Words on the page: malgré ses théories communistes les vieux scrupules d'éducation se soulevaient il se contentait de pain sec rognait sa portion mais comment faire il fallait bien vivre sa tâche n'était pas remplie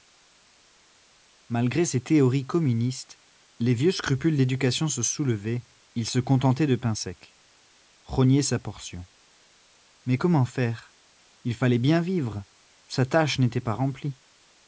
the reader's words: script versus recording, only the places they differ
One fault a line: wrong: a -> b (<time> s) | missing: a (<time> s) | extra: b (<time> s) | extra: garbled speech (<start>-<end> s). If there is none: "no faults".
no faults